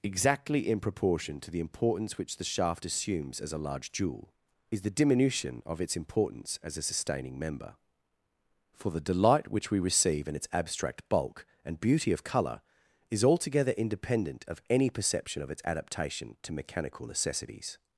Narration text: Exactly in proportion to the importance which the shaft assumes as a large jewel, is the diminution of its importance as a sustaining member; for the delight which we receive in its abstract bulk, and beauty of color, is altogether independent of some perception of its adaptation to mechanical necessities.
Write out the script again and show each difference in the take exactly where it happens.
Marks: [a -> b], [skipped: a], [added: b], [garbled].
Exactly in proportion to the importance which the shaft assumes as a large jewel, is the diminution of its importance as a sustaining member; for the delight which we receive in its abstract bulk, and beauty of color, is altogether independent of [some -> any] perception of its adaptation to mechanical necessities.